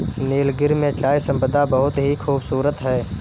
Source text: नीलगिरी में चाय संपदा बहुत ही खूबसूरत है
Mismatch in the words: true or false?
false